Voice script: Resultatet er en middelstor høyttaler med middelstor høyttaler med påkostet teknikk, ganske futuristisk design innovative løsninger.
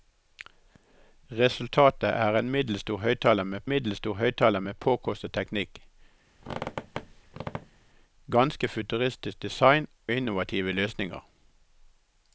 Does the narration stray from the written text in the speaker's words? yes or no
no